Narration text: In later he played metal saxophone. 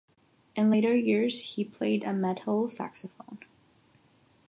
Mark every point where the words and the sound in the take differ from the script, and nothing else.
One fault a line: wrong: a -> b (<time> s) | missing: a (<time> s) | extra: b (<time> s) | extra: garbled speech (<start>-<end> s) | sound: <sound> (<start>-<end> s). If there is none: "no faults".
extra: years (0.9 s)
extra: a (2.0 s)